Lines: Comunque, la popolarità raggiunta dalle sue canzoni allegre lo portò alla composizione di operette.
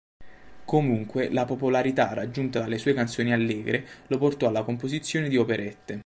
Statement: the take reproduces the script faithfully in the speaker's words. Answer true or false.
true